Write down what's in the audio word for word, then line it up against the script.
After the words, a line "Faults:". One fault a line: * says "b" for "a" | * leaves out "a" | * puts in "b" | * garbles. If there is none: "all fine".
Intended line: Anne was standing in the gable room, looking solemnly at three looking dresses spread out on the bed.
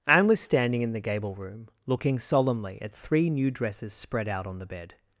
Anne was standing in the gable room, looking solemnly at three new dresses spread out on the bed.
Faults:
* says "new" for "looking"